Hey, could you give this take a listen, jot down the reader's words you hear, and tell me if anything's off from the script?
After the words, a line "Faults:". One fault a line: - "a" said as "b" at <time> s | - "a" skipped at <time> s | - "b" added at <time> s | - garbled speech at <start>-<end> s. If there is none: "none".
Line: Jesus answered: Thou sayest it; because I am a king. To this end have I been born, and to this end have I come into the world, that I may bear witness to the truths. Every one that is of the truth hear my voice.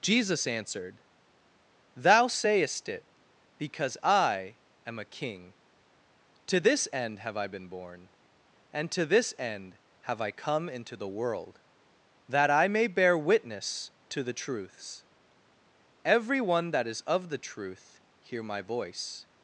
Jesus answered: Thou sayest it; because I am a king. To this end have I been born, and to this end have I come into the world, that I may bear witness to the truths. Every one that is of the truth hear my voice.
Faults:
none